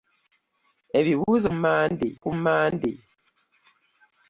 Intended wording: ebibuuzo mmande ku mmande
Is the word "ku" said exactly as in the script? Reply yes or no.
yes